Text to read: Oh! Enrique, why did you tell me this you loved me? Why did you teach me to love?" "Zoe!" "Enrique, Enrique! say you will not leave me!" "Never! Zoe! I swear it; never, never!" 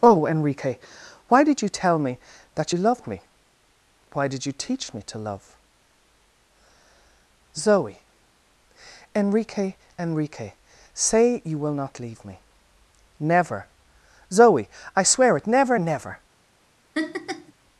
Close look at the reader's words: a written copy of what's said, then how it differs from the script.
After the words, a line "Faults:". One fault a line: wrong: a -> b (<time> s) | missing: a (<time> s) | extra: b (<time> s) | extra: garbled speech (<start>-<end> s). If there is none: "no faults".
Oh! Enrique, why did you tell me that you loved me? Why did you teach me to love?" "Zoe!" "Enrique, Enrique! say you will not leave me!" "Never! Zoe! I swear it; never, never!"
Faults:
wrong: this -> that (2.5 s)